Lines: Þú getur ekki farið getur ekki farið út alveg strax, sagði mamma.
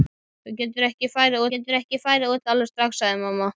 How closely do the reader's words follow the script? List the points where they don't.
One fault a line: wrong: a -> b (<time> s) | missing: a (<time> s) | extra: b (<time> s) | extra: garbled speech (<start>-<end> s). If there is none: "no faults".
no faults